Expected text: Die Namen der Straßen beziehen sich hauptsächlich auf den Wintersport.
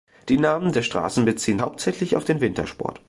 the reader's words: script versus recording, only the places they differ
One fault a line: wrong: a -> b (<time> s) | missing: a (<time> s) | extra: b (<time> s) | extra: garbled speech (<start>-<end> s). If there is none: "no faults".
missing: sich (1.6 s)